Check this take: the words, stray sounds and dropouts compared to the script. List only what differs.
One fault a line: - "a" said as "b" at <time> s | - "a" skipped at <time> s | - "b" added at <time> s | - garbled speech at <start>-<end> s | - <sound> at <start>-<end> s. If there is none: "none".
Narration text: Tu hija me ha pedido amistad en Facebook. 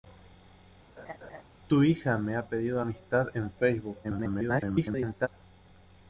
- laugh at 1.0-1.4 s
- garbled speech at 4.0-5.3 s